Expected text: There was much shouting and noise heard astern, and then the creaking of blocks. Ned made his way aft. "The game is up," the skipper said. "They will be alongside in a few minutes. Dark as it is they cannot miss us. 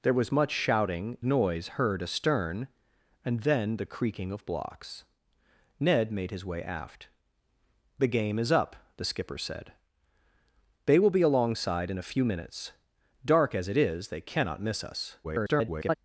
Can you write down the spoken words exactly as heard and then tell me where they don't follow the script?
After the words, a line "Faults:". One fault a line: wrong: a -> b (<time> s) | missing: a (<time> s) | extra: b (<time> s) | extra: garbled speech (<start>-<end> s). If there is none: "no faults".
There was much shouting noise heard astern, and then the creaking of blocks. Ned made his way aft. "The game is up," the skipper said. "They will be alongside in a few minutes. Dark as it is they cannot miss us. [garbled]
Faults:
missing: and (1.2 s)
extra: garbled speech (15.2-16.0 s)